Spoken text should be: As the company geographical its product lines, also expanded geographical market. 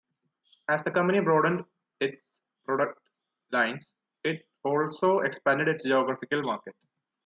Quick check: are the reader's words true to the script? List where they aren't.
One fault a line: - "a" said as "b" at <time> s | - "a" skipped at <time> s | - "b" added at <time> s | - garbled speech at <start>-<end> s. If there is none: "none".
- "geographical" said as "broadened" at 1.2 s
- "it" added at 4.2 s
- "its" added at 5.7 s